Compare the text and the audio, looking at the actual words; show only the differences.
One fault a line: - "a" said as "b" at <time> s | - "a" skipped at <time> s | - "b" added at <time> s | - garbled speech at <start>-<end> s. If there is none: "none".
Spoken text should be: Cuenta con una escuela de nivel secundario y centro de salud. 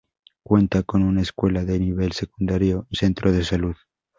none